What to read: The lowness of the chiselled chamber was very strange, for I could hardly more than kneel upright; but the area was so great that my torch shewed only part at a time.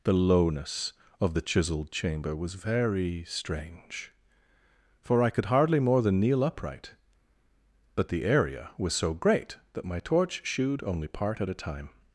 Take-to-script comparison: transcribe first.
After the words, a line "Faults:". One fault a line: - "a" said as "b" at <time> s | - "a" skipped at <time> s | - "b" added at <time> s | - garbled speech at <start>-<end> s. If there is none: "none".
The lowness of the chiselled chamber was very strange, for I could hardly more than kneel upright; but the area was so great that my torch shewed only part at a time.
Faults:
none